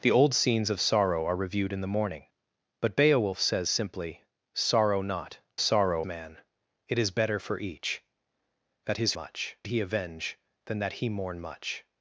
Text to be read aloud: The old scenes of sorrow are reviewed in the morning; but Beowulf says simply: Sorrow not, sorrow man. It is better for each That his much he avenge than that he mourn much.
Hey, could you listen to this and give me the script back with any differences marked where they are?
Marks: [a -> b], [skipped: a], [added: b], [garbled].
The old scenes of sorrow are reviewed in the morning; but Beowulf says simply: Sorrow not, sorrow man. It is better for each That his much he avenge than that he mourn much.